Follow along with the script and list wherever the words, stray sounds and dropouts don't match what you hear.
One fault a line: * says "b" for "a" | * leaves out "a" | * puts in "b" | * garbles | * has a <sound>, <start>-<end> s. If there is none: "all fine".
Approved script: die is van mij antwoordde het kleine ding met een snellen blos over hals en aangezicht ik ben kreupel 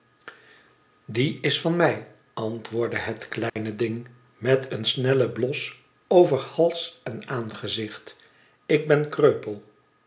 * has a dropout, 3.5-3.6 s